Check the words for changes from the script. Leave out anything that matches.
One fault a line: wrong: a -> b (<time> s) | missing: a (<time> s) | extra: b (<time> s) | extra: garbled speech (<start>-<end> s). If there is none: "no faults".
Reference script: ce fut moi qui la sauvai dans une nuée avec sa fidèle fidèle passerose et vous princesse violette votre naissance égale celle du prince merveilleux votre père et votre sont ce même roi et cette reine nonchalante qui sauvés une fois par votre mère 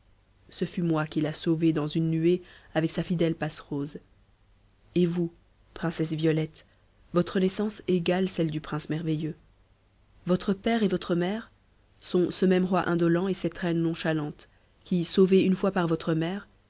missing: fidèle (3.4 s)
extra: mère (11.2 s)
extra: indolent (12.9 s)